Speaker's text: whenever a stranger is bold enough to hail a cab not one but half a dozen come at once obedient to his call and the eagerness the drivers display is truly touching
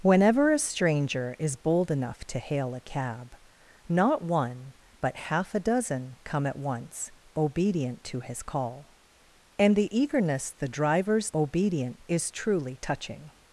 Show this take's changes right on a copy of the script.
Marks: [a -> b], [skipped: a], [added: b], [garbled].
whenever a stranger is bold enough to hail a cab not one but half a dozen come at once obedient to his call and the eagerness the drivers [display -> obedient] is truly touching